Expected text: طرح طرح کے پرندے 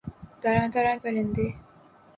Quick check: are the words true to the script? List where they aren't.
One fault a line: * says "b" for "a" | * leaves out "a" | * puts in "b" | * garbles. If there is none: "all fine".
* leaves out "کے"